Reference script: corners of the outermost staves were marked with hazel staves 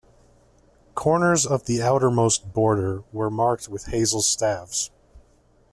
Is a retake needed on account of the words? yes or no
yes